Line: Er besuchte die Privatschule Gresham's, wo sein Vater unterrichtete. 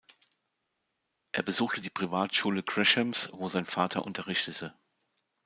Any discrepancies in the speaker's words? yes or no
no